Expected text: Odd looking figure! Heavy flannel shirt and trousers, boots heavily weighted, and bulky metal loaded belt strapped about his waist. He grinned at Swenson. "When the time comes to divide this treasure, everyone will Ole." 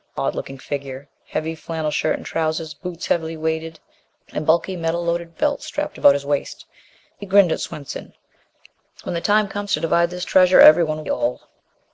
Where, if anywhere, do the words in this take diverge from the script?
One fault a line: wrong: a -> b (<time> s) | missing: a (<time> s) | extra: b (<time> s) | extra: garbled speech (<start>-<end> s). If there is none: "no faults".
no faults